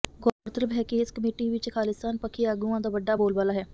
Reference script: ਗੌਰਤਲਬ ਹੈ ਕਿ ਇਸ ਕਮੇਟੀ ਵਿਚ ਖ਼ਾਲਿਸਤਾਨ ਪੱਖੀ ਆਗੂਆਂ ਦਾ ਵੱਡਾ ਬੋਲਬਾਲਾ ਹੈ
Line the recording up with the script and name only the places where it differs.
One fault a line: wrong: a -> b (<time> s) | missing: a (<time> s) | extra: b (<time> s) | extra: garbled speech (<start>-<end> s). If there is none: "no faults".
no faults